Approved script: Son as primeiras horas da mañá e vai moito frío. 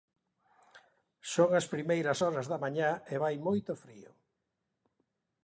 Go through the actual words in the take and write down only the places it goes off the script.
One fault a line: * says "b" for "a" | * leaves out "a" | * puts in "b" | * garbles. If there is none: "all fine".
all fine